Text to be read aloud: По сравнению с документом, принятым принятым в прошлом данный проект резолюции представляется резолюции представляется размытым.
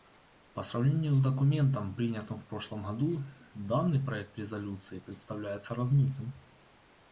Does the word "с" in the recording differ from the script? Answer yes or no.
no